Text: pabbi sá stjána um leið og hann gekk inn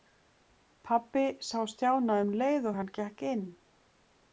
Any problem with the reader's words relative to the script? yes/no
no